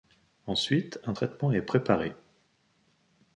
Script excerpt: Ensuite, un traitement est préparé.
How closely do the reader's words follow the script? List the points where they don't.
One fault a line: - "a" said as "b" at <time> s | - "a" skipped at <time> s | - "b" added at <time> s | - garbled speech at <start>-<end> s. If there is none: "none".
none